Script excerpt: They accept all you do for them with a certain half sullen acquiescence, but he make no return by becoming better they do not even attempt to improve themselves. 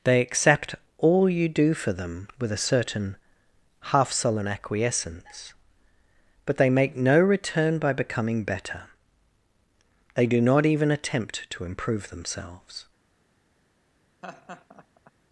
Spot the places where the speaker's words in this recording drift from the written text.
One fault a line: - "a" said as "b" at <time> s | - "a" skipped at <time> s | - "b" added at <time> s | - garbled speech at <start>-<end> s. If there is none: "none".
- "he" said as "they" at 6.6 s